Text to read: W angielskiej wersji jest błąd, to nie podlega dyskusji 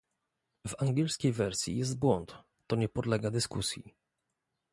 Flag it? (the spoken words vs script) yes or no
no